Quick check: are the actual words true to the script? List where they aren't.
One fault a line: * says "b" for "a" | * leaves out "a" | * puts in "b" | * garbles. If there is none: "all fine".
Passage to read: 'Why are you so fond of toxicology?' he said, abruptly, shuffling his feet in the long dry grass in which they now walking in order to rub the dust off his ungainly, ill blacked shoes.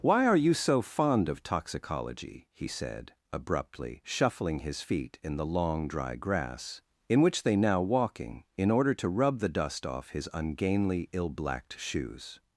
all fine